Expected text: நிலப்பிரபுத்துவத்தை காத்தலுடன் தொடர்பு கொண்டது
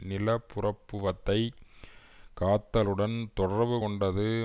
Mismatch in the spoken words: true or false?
false